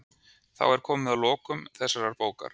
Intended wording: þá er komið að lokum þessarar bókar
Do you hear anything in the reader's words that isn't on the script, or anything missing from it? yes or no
no